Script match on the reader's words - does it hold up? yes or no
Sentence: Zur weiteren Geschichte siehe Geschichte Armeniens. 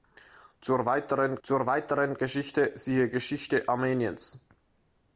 no